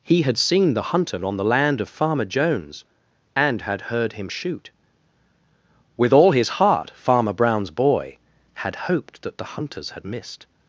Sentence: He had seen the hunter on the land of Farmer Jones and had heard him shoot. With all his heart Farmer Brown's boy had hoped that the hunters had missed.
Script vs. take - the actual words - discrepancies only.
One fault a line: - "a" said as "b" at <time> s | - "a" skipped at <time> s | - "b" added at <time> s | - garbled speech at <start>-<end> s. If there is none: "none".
none